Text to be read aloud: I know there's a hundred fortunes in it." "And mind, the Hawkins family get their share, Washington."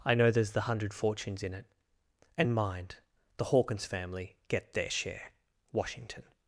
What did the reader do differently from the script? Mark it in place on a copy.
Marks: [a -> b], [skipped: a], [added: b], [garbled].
I know there's [a -> the] hundred fortunes in it." "And mind, the Hawkins family get their share, Washington."